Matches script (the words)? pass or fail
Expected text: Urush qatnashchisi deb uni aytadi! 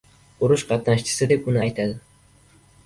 pass